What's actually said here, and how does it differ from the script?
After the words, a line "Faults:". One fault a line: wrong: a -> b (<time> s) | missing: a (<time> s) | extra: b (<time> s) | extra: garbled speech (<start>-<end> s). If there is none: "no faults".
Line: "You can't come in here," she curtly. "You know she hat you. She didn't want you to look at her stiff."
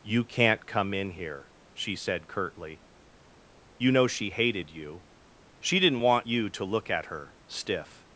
"You can't come in here," she said curtly. "You know she hated you. She didn't want you to look at her stiff."
Faults:
extra: said (1.9 s)
wrong: hat -> hated (4.3 s)